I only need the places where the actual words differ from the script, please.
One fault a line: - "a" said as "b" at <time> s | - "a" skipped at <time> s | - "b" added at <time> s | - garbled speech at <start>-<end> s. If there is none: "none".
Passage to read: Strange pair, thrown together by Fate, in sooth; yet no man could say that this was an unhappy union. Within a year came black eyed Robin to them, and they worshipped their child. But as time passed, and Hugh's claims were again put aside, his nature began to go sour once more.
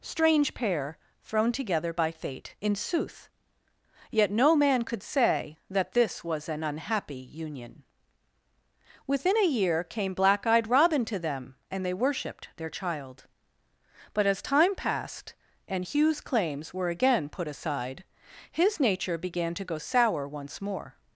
none